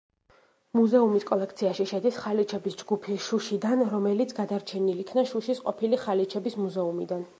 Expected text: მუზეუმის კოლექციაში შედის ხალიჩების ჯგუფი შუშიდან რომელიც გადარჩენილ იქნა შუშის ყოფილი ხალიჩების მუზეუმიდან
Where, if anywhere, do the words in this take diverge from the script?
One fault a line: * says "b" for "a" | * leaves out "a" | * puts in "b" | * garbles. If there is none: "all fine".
all fine